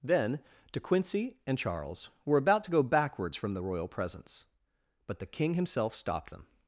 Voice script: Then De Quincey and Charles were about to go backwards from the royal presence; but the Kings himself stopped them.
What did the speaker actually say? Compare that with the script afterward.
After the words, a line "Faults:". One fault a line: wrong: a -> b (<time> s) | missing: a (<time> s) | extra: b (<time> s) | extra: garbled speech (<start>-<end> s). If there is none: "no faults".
Then De Quincey and Charles were about to go backwards from the royal presence; but the King himself stopped them.
Faults:
wrong: Kings -> King (5.3 s)